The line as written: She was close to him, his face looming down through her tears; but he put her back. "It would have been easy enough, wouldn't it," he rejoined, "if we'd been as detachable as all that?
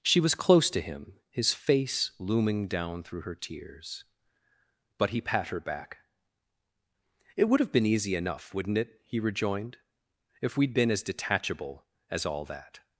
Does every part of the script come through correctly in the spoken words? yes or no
no